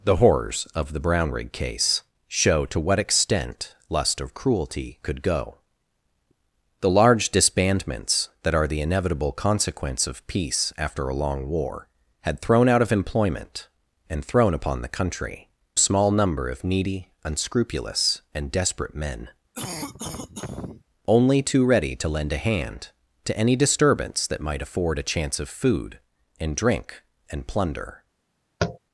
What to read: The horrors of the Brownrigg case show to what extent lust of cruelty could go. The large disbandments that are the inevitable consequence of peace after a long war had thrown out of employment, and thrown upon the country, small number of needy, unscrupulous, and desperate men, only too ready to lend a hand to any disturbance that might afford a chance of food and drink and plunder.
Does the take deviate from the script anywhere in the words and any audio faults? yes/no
yes